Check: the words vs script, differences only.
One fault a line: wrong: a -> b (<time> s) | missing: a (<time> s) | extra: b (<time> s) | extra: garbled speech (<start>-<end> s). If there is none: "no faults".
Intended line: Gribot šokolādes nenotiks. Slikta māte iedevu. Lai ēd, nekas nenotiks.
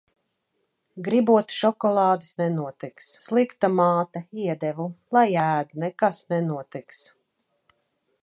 no faults